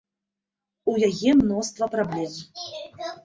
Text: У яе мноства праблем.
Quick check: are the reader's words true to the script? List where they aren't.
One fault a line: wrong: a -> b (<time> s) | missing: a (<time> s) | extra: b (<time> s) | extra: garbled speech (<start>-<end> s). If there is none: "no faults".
no faults